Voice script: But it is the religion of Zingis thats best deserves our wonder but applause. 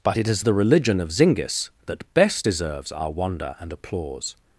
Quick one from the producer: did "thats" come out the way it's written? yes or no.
no